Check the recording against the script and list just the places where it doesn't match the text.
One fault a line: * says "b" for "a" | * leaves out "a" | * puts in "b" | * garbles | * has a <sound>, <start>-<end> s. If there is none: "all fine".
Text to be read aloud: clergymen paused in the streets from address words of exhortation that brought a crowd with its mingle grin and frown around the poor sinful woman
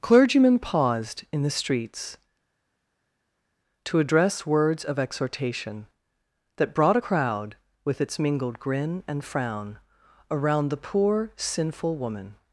* says "to" for "from"
* says "mingled" for "mingle"